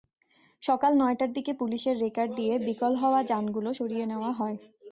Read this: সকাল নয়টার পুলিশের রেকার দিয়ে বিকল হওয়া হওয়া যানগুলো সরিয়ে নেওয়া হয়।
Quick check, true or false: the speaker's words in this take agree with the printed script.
false